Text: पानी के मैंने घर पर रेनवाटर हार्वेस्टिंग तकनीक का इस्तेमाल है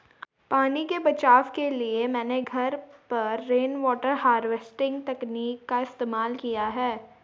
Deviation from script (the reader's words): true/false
true